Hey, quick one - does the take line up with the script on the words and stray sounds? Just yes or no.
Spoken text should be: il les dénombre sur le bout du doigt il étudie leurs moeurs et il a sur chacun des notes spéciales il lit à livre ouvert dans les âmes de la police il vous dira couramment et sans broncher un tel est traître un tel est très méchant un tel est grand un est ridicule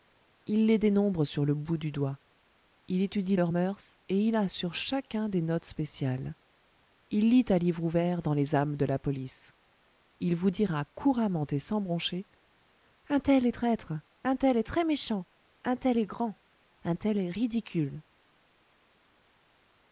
no